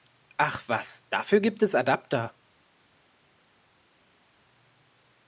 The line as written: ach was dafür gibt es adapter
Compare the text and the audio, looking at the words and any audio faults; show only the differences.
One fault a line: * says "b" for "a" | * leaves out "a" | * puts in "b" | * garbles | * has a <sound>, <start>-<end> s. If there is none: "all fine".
all fine